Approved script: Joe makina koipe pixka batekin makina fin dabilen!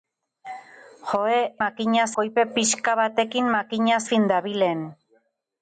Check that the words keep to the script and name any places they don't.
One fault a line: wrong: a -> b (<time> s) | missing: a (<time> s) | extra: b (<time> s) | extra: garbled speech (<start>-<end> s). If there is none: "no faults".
no faults